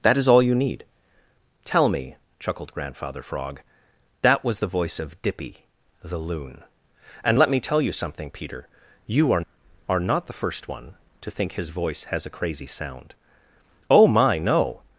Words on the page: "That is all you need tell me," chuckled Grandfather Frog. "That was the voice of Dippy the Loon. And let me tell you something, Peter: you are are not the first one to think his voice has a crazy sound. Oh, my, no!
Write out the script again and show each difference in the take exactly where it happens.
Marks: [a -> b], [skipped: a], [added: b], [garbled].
"That is all you need tell me," chuckled Grandfather Frog. "That was the voice of Dippy the Loon. And let me tell you something, Peter: you are are not the first one to think his voice has a crazy sound. Oh, my, no!